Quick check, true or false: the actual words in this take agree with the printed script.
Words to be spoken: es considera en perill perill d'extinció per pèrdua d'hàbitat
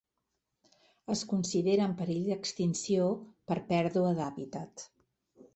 false